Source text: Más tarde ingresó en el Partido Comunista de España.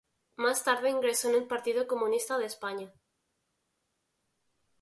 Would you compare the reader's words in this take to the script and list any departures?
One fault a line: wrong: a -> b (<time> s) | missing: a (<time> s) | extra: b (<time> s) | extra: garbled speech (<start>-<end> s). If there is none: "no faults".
no faults